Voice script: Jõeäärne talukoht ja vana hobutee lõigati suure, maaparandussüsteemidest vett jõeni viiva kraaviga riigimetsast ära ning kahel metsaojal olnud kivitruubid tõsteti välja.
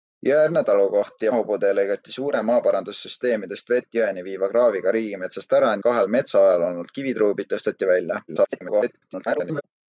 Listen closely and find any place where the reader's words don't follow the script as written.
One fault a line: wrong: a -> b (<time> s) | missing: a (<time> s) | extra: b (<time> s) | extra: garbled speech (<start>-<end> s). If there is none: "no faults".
missing: vana (1.3 s)
missing: ning (5.7 s)
extra: garbled speech (8.3-9.6 s)